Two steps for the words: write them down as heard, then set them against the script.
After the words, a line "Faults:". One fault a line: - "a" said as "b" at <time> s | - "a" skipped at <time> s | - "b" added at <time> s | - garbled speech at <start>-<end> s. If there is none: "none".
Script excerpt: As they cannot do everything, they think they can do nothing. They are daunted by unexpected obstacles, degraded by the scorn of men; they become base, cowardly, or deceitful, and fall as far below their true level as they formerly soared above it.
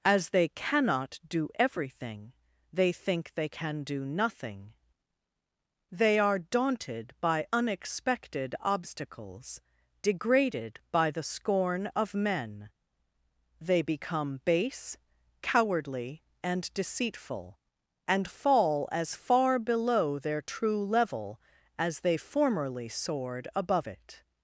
As they cannot do everything, they think they can do nothing. They are daunted by unexpected obstacles, degraded by the scorn of men; they become base, cowardly, and deceitful, and fall as far below their true level as they formerly soared above it.
Faults:
- "or" said as "and" at 16.4 s